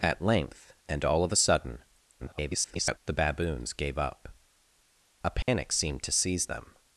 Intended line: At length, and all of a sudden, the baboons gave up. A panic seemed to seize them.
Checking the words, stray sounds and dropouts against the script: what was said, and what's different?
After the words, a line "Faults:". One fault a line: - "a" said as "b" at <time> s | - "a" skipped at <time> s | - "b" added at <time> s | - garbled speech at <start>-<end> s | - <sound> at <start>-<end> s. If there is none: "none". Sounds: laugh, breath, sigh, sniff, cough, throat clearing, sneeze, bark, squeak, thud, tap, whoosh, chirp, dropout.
At length, and all of a sudden, [garbled] the baboons gave up. A panic seemed to seize them.
Faults:
- garbled speech at 2.2-3.0 s
- dropout at 5.4-5.5 s